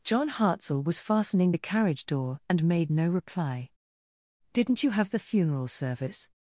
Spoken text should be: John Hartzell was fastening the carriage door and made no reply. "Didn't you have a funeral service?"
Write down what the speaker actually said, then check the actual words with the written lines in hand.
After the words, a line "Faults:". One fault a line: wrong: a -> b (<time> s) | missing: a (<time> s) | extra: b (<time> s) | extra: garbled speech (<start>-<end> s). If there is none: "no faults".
John Hartzell was fastening the carriage door and made no reply. "Didn't you have the funeral service?"
Faults:
wrong: a -> the (5.1 s)